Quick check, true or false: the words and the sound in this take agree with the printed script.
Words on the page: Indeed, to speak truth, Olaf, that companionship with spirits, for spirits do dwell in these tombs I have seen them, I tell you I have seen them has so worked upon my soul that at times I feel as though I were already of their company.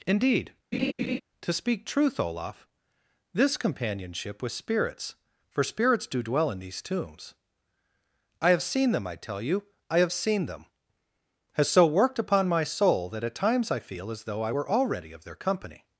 false